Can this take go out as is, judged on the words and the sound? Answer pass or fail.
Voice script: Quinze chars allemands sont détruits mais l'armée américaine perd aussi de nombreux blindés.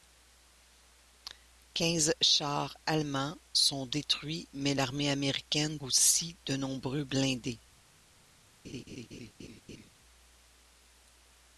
fail